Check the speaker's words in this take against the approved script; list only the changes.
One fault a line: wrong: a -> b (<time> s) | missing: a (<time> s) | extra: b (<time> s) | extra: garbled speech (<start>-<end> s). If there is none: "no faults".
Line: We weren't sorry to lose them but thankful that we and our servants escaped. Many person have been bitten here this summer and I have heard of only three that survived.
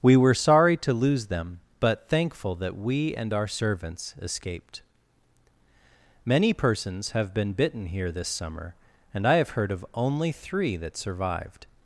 wrong: weren't -> were (0.2 s)
wrong: person -> persons (6.5 s)